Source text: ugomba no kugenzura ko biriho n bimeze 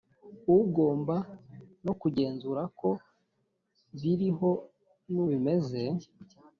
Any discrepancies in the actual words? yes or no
no